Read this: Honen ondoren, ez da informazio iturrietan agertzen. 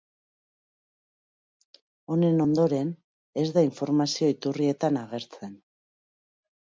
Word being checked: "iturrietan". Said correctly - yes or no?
yes